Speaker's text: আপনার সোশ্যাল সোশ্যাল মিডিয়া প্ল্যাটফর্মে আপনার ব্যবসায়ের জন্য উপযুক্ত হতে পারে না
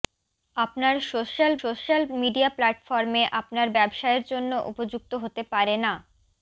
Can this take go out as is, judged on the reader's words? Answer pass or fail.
pass